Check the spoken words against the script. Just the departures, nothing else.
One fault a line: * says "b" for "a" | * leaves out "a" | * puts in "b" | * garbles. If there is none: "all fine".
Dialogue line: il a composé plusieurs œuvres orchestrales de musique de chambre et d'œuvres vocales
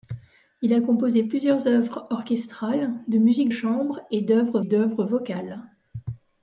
* leaves out "de"
* puts in "d'œuvres"